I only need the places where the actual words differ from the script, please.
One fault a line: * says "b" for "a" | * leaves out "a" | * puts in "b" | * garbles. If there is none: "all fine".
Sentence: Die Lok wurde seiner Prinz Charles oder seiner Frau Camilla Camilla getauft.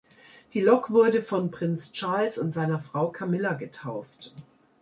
* says "von" for "seiner"
* says "und" for "oder"
* leaves out "Camilla"